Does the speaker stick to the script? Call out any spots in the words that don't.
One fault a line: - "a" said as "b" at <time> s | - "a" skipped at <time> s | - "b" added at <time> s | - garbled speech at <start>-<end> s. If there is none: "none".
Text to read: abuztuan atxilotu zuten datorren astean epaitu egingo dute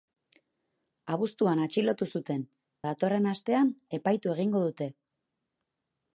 none